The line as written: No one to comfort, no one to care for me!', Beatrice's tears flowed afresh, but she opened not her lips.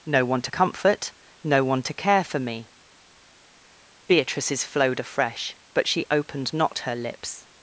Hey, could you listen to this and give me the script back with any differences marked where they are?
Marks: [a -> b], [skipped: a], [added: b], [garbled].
No one to comfort, no one to care for me!', Beatrice's [skipped: tears] flowed afresh, but she opened not her lips.